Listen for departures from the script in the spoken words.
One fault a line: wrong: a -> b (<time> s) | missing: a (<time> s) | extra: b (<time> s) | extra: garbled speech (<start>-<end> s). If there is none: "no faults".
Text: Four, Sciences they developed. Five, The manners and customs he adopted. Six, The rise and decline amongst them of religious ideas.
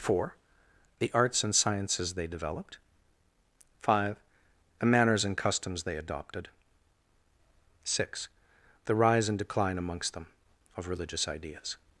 extra: The arts and (1.0 s)
wrong: he -> they (5.8 s)